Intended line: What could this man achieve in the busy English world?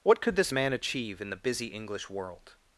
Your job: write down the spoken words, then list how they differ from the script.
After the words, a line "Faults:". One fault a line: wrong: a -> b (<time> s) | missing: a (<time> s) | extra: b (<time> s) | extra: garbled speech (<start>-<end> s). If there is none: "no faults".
What could this man achieve in the busy English world?
Faults:
no faults